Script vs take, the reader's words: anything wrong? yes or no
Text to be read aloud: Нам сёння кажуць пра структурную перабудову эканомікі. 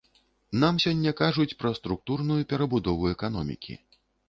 no